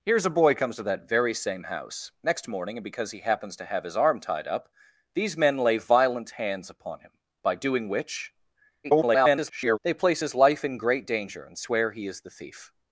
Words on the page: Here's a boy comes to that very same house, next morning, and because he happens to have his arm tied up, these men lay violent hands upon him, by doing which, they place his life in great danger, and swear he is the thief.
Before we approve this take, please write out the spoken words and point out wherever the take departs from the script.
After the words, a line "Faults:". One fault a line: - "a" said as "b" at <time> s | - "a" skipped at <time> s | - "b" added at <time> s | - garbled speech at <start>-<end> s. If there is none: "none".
Here's a boy comes to that very same house, next morning, and because he happens to have his arm tied up, these men lay violent hands upon him, by doing which, [garbled] they place his life in great danger, and swear he is the thief.
Faults:
- garbled speech at 8.8-9.8 s